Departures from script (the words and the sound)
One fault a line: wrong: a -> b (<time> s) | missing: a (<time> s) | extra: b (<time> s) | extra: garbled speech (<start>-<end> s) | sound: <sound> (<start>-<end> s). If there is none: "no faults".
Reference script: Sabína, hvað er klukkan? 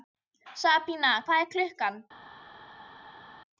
no faults